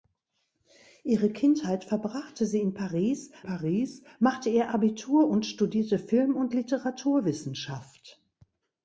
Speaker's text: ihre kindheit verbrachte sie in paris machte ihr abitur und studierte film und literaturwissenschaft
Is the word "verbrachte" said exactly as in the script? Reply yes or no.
yes